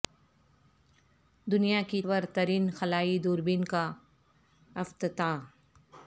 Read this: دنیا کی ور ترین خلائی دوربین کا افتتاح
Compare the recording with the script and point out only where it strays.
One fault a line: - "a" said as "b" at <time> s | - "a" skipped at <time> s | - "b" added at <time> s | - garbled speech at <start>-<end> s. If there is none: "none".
none